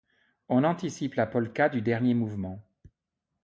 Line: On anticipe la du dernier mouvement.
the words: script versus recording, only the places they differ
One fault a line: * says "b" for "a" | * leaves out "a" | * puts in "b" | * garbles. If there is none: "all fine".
* puts in "polka"